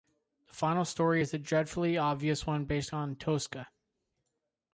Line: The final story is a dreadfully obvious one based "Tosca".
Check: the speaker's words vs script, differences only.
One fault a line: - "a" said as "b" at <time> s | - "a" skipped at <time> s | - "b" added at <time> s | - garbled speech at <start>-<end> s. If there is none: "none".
- "on" added at 2.9 s